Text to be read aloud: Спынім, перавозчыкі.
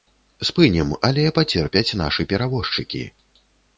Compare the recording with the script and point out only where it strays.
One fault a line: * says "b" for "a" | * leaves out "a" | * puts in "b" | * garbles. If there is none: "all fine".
* puts in "але пацерпяць нашы"